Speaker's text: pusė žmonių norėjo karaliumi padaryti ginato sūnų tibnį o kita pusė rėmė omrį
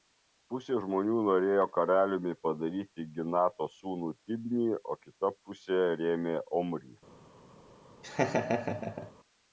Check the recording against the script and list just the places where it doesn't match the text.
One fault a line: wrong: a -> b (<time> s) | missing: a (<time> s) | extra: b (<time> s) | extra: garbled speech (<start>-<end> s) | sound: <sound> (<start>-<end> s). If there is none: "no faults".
sound: laugh (8.0-9.1 s)